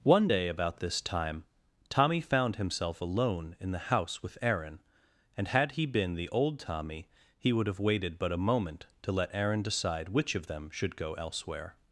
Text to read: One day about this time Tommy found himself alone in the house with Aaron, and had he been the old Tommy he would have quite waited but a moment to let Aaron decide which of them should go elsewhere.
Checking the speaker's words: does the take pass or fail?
fail